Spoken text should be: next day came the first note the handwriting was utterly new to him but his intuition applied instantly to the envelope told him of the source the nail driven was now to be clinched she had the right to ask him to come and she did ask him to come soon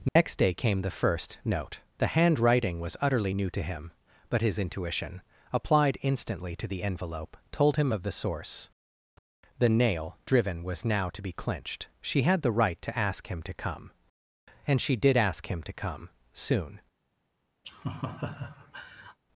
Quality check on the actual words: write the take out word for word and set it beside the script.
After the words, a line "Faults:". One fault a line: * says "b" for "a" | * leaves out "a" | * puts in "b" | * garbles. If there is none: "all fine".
next day came the first note the handwriting was utterly new to him but his intuition applied instantly to the envelope told him of the source the nail driven was now to be clinched she had the right to ask him to come and she did ask him to come soon
Faults:
all fine